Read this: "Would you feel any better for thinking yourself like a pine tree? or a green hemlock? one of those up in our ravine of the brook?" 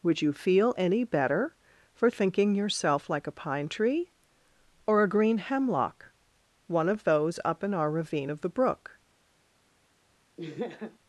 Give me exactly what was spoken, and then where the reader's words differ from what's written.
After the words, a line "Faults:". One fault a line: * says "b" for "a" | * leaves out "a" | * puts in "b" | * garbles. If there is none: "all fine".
"Would you feel any better for thinking yourself like a pine tree? or a green hemlock? one of those up in our ravine of the brook?"
Faults:
all fine